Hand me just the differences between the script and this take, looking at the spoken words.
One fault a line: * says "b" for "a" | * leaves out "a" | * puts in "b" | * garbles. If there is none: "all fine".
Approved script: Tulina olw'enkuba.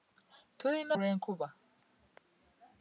all fine